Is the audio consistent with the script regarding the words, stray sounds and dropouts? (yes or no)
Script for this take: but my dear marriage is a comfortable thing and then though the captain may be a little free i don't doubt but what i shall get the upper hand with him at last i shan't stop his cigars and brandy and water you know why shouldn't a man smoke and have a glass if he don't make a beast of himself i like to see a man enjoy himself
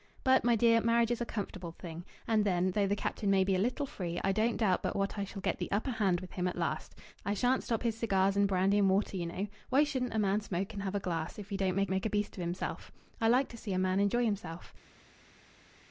no